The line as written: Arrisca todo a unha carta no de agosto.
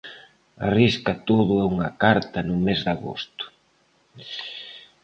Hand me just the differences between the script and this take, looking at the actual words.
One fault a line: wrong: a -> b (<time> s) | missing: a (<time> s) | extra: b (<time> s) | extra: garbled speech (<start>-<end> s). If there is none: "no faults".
extra: mes (2.6 s)